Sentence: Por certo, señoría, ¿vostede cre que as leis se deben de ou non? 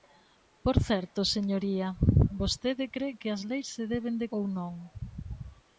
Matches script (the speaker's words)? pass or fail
pass